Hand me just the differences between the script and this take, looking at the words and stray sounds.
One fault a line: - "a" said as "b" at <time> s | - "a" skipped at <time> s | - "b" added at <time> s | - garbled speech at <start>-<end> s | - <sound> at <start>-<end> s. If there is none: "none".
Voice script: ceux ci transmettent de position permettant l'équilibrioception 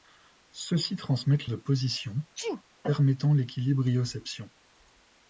- sneeze at 2.3-2.6 s